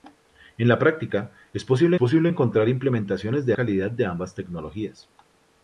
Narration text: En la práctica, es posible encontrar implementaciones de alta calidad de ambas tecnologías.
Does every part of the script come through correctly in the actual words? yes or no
no